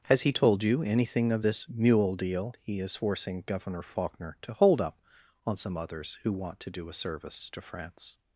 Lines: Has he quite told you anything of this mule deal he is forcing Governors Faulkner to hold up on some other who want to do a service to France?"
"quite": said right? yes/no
no